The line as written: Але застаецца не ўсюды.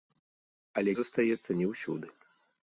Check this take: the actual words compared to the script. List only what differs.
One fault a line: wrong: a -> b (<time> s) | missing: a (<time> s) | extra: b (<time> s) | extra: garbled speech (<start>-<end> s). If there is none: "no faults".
no faults